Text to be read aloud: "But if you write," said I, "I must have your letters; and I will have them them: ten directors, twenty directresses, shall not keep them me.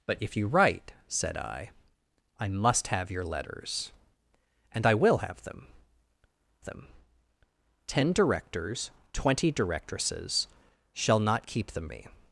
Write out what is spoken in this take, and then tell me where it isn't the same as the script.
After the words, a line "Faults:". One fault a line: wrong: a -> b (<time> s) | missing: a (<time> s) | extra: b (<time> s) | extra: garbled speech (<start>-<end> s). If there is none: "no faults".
"But if you write," said I, "I must have your letters; and I will have them them: ten directors, twenty directresses, shall not keep them me.
Faults:
no faults